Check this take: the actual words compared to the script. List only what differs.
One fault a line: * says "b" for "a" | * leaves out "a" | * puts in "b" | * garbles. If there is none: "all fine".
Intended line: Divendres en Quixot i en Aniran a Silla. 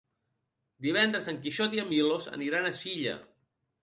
* puts in "Milos"